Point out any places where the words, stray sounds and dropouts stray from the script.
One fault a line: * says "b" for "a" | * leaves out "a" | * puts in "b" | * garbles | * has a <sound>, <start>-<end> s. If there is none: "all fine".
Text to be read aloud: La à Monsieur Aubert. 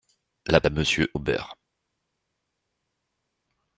all fine